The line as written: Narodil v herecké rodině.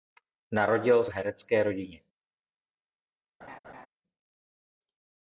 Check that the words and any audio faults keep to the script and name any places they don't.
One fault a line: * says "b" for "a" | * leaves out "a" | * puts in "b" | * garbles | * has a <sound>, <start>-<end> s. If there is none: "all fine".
* has a laugh, 3.4-3.9 s